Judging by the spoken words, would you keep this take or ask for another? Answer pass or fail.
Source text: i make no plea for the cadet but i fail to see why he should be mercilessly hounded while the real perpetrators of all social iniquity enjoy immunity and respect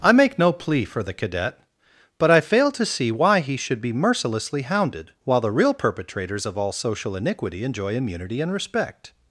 pass